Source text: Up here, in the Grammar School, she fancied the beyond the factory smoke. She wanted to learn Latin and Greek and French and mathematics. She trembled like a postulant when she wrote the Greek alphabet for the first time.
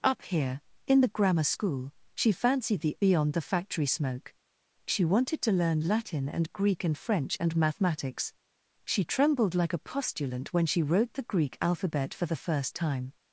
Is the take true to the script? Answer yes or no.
yes